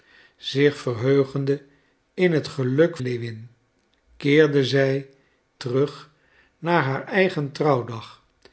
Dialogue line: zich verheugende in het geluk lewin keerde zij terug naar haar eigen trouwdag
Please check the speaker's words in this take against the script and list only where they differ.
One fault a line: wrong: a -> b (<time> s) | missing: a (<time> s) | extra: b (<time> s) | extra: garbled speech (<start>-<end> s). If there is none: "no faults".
no faults